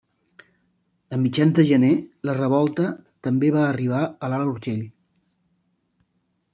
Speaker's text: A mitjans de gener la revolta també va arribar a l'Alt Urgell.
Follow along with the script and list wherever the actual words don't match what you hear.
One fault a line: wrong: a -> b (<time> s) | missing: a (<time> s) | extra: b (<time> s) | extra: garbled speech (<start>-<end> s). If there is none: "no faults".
no faults